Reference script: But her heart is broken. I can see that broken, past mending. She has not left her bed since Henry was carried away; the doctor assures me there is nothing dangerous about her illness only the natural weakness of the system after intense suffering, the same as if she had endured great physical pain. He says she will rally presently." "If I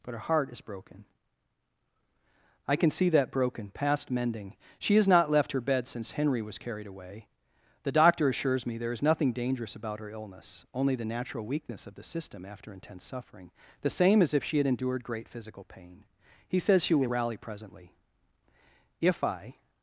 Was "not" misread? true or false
false